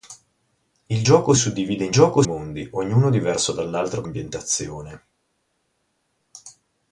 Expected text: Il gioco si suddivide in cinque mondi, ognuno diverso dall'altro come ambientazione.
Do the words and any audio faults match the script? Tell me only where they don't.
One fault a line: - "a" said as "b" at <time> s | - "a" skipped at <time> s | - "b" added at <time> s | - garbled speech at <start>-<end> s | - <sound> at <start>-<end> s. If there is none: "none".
- "si" skipped at 1.3 s
- "cinque" said as "gioco" at 1.9 s
- "come" skipped at 4.0 s